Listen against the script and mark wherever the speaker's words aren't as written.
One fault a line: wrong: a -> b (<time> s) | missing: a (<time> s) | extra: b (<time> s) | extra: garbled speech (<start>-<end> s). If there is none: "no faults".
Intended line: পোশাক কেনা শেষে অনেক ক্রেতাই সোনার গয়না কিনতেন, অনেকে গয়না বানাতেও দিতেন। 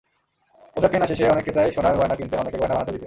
no faults